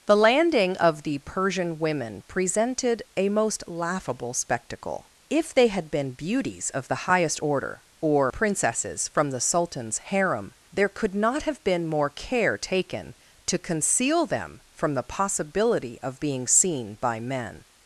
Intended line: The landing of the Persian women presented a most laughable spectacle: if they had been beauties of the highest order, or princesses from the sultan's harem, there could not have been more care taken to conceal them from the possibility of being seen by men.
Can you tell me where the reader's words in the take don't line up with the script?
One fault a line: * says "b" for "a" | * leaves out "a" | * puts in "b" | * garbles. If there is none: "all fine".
all fine